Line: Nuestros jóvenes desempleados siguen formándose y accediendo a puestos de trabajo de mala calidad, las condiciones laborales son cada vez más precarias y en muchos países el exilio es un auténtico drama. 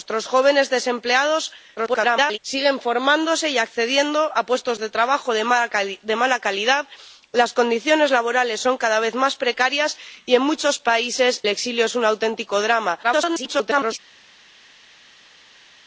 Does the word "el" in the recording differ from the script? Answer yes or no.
yes